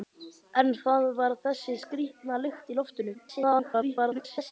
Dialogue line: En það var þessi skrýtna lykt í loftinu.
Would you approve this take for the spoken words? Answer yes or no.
no